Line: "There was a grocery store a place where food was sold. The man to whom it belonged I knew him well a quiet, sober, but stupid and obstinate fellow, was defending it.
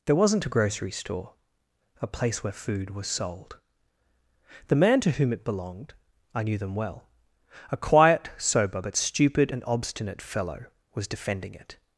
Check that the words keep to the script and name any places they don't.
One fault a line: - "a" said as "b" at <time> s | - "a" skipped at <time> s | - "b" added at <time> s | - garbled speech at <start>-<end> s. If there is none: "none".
- "was" said as "wasn't" at 0.1 s
- "him" said as "them" at 6.6 s